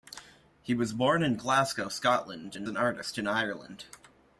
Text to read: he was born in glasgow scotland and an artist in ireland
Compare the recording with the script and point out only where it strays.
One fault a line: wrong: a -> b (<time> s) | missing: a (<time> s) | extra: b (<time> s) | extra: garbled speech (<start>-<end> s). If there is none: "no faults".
no faults